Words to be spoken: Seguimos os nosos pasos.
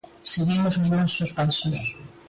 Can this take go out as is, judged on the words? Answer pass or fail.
pass